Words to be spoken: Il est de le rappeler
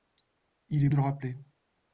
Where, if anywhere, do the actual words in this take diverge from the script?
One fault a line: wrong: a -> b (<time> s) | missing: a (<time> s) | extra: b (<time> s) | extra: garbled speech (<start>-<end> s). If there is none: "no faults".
no faults